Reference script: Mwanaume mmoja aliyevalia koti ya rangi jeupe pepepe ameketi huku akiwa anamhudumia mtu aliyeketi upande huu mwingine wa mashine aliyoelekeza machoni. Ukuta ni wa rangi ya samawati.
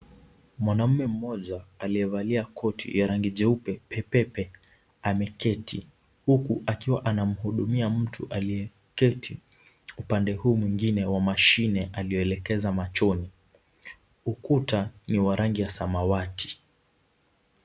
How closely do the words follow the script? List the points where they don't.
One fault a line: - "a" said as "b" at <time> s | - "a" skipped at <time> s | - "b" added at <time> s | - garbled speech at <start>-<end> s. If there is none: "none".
none